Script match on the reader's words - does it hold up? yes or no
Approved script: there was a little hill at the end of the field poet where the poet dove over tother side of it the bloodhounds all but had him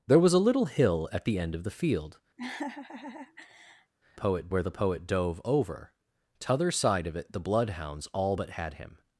yes